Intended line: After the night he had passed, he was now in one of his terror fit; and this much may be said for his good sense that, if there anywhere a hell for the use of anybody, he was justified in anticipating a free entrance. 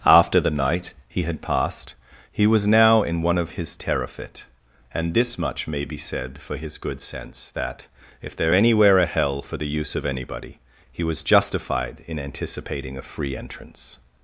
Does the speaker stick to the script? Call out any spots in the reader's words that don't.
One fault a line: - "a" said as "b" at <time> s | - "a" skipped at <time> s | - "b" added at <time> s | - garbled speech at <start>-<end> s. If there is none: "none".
none